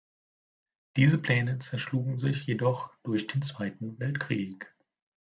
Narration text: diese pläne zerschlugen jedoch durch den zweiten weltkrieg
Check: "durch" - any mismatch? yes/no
no